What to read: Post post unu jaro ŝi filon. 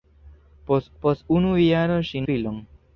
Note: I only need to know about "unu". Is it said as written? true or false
true